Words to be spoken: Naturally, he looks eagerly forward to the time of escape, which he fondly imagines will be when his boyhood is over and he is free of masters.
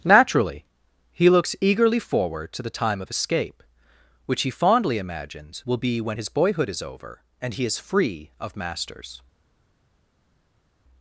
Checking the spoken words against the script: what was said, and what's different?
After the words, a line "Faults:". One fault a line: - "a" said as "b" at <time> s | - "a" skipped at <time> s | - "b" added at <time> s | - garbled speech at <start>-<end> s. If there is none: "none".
Naturally, he looks eagerly forward to the time of escape, which he fondly imagines will be when his boyhood is over and he is free of masters.
Faults:
none